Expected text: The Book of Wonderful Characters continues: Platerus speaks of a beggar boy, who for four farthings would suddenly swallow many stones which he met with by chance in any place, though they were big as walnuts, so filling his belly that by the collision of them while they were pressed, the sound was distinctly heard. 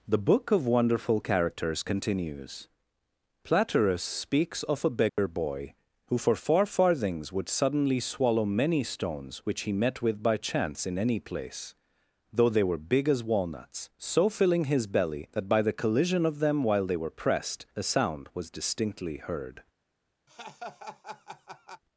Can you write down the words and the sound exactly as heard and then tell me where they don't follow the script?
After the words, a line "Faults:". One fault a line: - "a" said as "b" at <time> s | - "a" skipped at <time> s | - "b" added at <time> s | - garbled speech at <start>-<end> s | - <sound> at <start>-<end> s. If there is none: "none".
The Book of Wonderful Characters continues: Platerus speaks of a beggar boy, who for four farthings would suddenly swallow many stones which he met with by chance in any place, though they were big as walnuts, so filling his belly that by the collision of them while they were pressed, a sound was distinctly heard.
Faults:
- dropout at 5.1-5.2 s
- "the" said as "a" at 17.8 s
- laugh at 20.3-21.8 s